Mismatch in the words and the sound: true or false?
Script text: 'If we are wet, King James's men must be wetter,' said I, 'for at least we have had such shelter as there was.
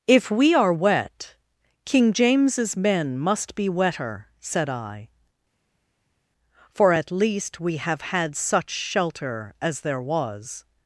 false